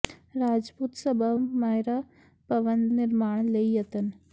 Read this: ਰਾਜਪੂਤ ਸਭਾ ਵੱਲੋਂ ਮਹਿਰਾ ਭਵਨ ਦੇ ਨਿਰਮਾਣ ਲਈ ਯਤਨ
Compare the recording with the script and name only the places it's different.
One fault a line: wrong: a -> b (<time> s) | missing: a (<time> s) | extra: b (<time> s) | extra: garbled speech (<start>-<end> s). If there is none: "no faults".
missing: ਵੱਲੋਂ (1.3 s)
missing: ਦੇ (2.9 s)